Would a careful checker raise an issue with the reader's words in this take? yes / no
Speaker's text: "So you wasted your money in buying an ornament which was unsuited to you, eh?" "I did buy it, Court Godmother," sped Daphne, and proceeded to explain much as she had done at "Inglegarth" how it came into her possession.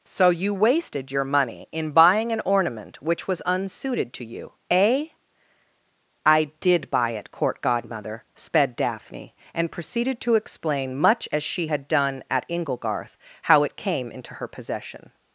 no